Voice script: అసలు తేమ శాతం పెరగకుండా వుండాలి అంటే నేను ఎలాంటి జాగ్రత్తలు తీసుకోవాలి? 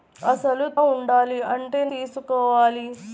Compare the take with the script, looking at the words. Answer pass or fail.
fail